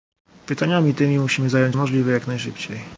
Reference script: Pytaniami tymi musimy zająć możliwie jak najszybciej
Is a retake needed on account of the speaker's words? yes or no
no